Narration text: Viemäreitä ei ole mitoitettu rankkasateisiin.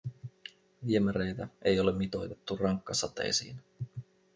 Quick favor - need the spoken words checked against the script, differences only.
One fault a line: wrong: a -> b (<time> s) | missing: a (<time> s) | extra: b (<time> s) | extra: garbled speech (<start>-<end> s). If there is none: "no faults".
no faults